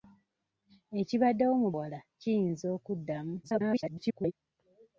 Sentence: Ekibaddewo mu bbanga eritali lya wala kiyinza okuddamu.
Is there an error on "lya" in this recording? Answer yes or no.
yes